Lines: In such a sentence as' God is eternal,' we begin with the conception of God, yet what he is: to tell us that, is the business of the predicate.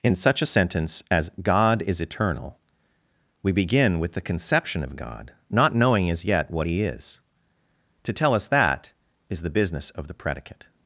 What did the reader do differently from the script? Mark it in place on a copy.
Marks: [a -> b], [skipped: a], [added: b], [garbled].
In such a sentence as' God is eternal,' we begin with the conception of God, [added: not knowing as] yet what he is: to tell us that, is the business of the predicate.